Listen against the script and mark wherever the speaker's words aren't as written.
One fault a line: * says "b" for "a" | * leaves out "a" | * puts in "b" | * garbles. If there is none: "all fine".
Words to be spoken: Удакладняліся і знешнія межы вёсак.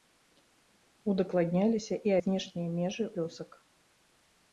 all fine